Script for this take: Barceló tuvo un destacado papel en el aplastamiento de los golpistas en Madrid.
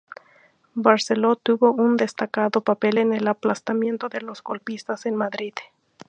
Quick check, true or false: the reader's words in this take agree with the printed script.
true